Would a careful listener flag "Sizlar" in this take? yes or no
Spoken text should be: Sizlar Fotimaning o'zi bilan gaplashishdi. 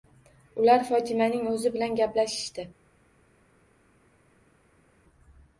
yes